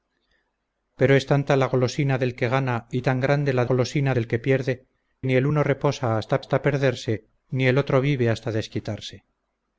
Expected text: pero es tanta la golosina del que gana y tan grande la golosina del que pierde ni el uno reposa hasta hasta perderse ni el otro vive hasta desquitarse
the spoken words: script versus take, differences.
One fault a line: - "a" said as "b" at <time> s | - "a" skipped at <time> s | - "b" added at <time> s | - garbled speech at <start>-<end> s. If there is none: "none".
none